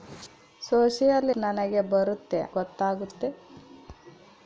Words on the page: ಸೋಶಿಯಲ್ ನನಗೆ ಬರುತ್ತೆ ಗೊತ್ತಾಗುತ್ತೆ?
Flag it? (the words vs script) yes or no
no